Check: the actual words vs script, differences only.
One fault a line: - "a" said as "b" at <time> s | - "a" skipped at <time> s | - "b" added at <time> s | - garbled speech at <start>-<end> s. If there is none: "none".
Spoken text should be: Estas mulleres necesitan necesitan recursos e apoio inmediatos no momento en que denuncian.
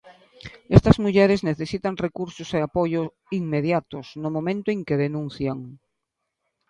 - "necesitan" skipped at 2.0 s